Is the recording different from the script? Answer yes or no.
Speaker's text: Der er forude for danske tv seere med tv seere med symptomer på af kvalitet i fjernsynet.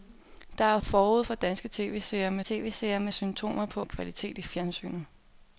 no